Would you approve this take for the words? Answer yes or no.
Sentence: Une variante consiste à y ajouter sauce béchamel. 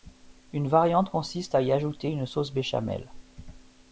no